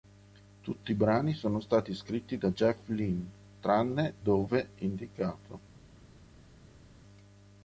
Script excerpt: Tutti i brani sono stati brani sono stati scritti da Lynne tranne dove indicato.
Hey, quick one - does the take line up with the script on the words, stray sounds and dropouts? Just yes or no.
no